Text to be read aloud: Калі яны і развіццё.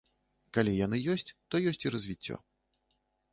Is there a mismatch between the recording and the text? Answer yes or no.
yes